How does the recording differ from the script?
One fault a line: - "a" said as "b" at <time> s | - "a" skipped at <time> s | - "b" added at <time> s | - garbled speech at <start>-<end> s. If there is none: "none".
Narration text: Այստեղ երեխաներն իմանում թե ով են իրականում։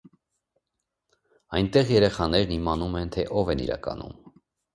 - "Այստեղ" said as "Այնտեղ" at 1.6 s
- "են" added at 3.0 s